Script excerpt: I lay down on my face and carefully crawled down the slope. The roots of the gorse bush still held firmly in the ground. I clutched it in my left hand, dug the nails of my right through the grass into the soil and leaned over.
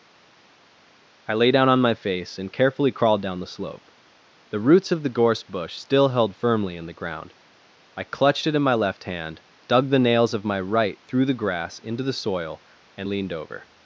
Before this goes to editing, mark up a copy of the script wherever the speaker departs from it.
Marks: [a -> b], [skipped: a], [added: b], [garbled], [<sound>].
I lay down on my face and carefully crawled down the slope. The roots of the gorse bush still held firmly in the ground. I clutched it in my left hand, dug the nails of my right through the grass into the soil and leaned over.